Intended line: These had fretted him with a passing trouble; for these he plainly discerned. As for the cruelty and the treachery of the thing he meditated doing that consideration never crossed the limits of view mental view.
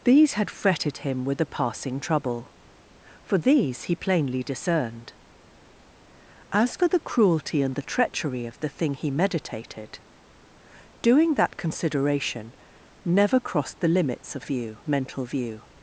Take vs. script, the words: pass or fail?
pass